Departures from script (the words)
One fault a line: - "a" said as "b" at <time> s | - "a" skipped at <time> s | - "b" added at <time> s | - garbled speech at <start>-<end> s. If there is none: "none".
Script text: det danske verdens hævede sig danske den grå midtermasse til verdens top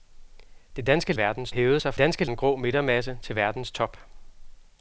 none